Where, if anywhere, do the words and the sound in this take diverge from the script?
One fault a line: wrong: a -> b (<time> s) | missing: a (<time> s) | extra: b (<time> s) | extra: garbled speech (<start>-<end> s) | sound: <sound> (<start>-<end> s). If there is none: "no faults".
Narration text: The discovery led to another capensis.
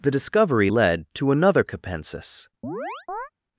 sound: chirp (2.6-3.3 s)